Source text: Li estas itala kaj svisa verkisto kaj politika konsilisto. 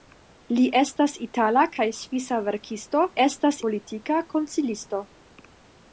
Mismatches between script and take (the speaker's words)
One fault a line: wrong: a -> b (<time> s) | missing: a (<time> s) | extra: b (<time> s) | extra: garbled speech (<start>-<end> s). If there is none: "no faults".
wrong: kaj -> estas (3.2 s)